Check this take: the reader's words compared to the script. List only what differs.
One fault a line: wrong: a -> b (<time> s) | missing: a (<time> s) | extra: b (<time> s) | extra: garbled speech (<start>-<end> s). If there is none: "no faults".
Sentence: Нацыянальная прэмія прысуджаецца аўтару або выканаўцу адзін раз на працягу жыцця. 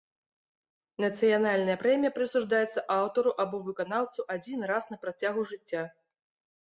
no faults